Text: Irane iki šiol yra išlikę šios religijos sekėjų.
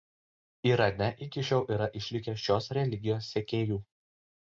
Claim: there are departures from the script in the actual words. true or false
false